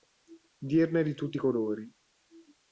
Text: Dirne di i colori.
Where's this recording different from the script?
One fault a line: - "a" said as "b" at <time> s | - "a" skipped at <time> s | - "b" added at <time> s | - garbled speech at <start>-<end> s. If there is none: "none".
- "tutti" added at 1.1 s